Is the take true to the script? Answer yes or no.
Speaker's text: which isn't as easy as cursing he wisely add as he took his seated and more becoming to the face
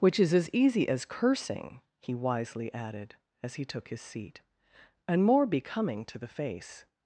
no